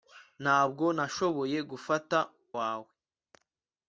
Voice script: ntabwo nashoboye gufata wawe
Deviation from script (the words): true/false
false